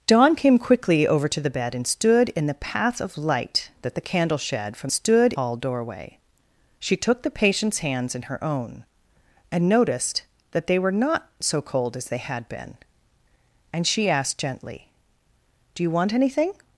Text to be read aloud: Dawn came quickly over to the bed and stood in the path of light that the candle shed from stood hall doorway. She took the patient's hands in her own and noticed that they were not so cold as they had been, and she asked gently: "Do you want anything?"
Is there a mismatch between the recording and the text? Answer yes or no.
no